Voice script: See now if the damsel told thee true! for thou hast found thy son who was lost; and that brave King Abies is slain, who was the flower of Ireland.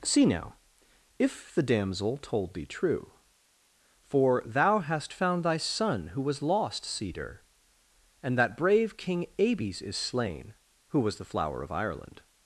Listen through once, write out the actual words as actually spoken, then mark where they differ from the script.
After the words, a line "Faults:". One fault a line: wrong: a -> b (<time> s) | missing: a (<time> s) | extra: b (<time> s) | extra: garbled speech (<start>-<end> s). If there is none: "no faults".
See now if the damsel told thee true! for thou hast found thy son who was lost; cedar and that brave King Abies is slain, who was the flower of Ireland.
Faults:
extra: cedar (6.8 s)